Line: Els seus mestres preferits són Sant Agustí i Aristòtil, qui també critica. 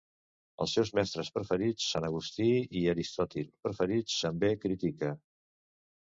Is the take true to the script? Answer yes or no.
no